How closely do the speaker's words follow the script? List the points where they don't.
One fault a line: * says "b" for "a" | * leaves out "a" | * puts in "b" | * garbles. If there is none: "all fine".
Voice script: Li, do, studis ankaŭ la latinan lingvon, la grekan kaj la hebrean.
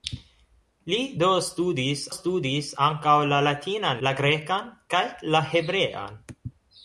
* puts in "studis"
* leaves out "lingvon"